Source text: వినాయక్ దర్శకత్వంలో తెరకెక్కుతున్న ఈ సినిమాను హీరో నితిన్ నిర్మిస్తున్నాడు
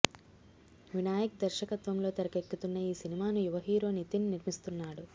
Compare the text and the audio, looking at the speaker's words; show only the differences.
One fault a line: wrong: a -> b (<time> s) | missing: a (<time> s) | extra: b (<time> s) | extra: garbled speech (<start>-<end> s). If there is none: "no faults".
extra: యువ (3.5 s)